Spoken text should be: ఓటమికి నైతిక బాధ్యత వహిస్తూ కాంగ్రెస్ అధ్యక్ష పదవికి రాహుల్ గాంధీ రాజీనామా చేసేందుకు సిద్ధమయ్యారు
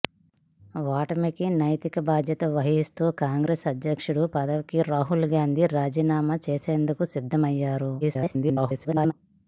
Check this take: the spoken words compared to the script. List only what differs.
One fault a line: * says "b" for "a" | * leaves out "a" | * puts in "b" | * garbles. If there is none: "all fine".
* garbles